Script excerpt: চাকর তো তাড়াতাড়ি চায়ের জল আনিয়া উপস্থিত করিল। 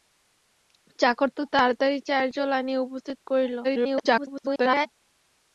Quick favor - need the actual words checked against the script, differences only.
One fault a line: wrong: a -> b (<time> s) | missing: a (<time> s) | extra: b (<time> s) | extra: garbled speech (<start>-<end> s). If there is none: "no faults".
extra: garbled speech (3.6-4.9 s)